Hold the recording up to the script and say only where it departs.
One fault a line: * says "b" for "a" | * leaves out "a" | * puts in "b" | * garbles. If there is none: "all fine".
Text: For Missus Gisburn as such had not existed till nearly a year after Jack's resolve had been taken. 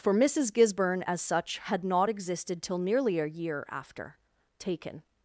* leaves out "Jack's resolve had been"